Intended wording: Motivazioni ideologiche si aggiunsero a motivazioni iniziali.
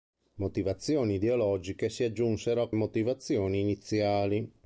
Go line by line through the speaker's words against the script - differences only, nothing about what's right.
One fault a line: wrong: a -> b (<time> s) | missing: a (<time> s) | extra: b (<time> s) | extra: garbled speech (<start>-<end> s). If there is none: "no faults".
no faults